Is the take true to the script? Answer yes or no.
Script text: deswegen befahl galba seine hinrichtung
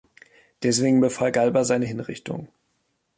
yes